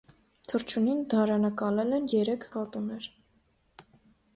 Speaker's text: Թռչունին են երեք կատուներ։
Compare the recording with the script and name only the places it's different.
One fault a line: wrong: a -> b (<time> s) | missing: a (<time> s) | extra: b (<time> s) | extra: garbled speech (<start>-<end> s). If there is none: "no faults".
extra: դարանակալել (1.1 s)